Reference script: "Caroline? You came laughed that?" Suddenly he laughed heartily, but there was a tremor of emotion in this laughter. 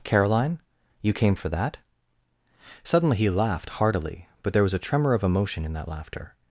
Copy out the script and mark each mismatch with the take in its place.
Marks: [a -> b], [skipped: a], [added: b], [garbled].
"Caroline? You came [laughed -> for] that?" Suddenly he laughed heartily, but there was a tremor of emotion in [this -> that] laughter.